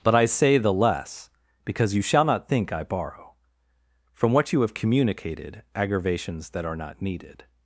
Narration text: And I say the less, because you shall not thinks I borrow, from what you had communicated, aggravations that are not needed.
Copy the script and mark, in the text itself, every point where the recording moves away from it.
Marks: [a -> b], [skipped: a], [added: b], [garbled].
[And -> But] I say the less, because you shall not [thinks -> think] I borrow, from what you [had -> have] communicated, aggravations that are not needed.